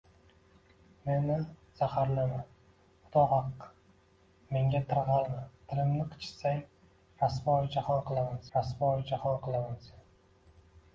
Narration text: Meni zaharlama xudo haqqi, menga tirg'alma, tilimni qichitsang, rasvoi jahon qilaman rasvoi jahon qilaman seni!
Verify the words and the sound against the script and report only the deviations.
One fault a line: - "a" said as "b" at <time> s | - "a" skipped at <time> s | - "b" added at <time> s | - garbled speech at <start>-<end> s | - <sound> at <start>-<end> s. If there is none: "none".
none